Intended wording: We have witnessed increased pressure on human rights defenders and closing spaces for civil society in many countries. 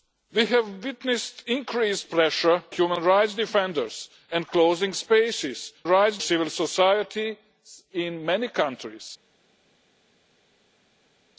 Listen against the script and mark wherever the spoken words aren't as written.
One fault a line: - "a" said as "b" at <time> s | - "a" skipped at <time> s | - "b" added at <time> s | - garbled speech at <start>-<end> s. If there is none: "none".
- "on" skipped at 2.6 s
- "for" said as "rights" at 5.9 s